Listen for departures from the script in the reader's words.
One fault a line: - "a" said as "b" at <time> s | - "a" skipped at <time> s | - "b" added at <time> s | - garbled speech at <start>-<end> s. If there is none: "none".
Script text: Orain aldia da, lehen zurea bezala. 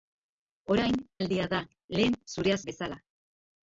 none